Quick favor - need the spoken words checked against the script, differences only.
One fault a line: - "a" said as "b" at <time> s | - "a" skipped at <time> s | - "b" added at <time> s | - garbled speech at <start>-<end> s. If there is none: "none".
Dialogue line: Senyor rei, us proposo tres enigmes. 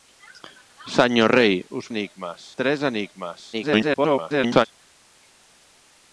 - "proposo" said as "enigmes" at 1.9 s
- garbled speech at 3.5-4.7 s